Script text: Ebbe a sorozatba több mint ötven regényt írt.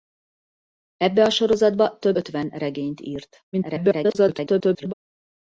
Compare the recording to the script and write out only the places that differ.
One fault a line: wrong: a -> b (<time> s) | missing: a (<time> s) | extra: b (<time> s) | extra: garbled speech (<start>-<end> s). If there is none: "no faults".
missing: mint (2.1 s)
extra: garbled speech (3.5-4.9 s)